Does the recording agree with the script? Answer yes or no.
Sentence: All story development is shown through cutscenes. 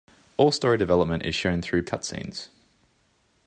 yes